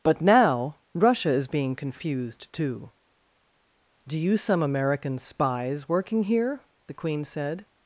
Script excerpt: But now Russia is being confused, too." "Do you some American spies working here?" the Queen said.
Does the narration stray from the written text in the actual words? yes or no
no